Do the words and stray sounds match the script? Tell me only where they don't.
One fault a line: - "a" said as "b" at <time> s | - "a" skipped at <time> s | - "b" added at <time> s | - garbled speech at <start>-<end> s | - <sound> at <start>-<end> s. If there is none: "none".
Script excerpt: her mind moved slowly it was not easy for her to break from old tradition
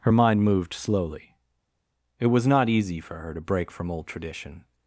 none